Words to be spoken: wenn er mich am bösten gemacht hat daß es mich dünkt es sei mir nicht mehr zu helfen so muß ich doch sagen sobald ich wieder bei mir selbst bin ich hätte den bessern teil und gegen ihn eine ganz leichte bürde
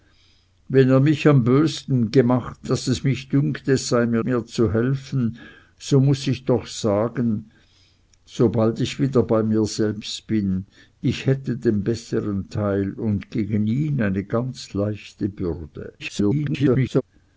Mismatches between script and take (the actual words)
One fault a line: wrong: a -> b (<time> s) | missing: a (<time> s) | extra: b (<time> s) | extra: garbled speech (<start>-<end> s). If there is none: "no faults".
missing: hat (2.7 s)
missing: nicht (4.2 s)
extra: garbled speech (16.0-17.0 s)